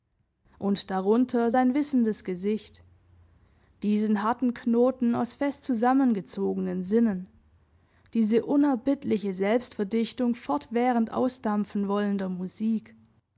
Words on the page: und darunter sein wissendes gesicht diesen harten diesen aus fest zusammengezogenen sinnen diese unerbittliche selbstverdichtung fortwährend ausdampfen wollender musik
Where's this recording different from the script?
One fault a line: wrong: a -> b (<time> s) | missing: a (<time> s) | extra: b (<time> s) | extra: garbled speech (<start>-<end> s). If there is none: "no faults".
wrong: diesen -> knoten (4.5 s)